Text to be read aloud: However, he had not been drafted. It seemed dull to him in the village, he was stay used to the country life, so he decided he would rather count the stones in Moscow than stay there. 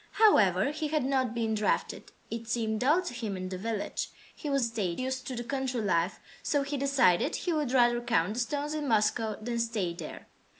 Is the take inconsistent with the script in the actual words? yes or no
no